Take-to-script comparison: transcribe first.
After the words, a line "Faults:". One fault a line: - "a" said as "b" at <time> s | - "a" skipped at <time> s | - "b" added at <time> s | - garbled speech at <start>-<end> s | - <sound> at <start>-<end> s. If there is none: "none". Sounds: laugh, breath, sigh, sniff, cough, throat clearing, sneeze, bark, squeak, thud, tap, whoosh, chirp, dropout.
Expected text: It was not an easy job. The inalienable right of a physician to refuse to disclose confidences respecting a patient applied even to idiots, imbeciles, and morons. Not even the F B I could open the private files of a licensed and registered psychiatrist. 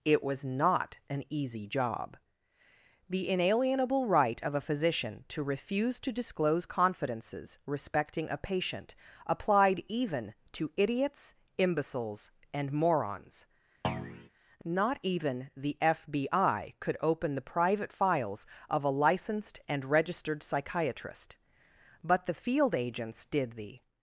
It was not an easy job. The inalienable right of a physician to refuse to disclose confidences respecting a patient applied even to idiots, imbeciles, and morons. Not even the F B I could open the private files of a licensed and registered psychiatrist. But the field agents did the
Faults:
- thud at 13.8-14.3 s
- "But the field agents did the" added at 22.0 s